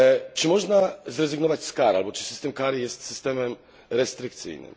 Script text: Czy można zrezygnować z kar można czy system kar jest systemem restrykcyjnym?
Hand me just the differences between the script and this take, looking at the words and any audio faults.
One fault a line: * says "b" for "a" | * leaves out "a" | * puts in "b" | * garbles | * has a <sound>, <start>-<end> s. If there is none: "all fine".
* says "albo" for "można"